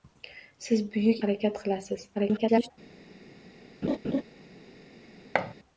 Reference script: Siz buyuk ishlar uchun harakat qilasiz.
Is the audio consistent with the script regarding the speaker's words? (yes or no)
no